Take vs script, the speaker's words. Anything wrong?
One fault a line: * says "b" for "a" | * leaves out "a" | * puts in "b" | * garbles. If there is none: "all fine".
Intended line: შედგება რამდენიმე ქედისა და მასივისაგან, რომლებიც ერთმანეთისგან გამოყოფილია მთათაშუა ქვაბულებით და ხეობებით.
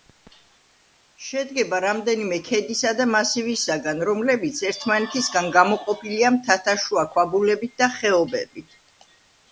all fine